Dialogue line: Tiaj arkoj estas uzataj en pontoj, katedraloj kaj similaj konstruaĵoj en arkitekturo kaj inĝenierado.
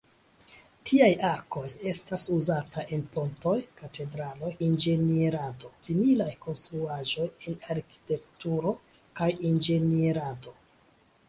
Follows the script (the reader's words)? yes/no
no